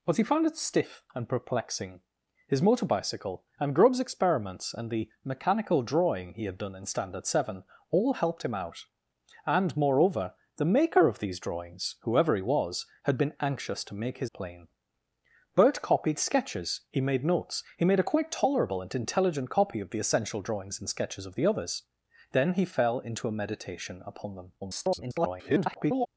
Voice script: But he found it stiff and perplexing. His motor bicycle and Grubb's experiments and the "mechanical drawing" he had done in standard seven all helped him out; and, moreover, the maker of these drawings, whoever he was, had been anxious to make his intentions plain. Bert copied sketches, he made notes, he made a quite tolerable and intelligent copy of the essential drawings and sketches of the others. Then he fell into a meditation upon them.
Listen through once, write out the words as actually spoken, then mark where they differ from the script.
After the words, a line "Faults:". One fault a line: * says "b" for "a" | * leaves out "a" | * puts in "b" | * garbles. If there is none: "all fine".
But he found it stiff and perplexing. His motor bicycle and Grubb's experiments and the "mechanical drawing" he had done in standard seven all helped him out; and, moreover, the maker of these drawings, whoever he was, had been anxious to make his plain. Bert copied sketches, he made notes, he made a quite tolerable and intelligent copy of the essential drawings and sketches of the others. Then he fell into a meditation upon them. [garbled]
Faults:
* leaves out "intentions"
* garbles